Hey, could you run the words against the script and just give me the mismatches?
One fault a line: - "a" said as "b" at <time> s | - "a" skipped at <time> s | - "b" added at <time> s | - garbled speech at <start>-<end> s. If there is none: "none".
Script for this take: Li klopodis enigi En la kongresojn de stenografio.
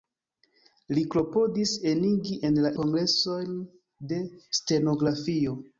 none